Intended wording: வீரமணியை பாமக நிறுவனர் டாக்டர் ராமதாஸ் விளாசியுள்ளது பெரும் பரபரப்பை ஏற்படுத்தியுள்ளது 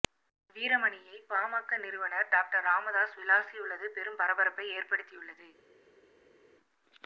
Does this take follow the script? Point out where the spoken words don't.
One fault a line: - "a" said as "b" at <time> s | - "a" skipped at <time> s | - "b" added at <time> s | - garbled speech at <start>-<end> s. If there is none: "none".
none